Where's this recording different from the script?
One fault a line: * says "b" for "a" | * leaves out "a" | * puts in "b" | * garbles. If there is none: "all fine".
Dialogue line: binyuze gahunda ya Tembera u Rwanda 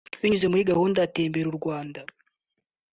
* puts in "muri"